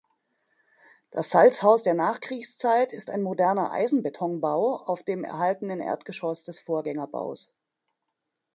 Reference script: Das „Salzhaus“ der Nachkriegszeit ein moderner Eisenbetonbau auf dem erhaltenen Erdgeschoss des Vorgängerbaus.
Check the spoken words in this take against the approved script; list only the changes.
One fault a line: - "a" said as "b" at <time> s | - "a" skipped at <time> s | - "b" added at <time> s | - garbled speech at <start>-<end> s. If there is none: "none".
- "ist" added at 2.9 s